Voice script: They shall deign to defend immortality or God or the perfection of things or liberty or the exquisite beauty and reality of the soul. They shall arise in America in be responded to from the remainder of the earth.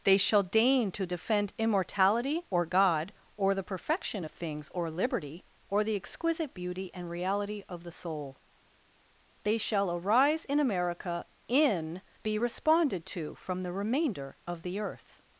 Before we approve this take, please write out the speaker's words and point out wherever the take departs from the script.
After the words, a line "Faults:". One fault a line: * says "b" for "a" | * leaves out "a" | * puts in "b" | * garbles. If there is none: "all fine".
They shall deign to defend immortality or God or the perfection of things or liberty or the exquisite beauty and reality of the soul. They shall arise in America in be responded to from the remainder of the earth.
Faults:
all fine